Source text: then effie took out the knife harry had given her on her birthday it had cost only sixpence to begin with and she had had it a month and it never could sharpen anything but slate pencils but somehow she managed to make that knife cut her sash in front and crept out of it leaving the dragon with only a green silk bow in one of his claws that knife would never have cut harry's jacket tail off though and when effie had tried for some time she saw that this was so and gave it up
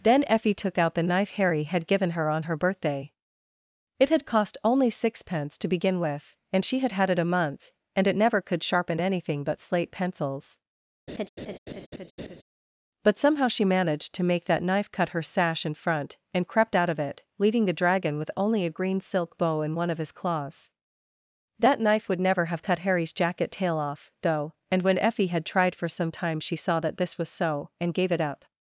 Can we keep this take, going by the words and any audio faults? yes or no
no